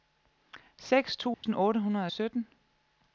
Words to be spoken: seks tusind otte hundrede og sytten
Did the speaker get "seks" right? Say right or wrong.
right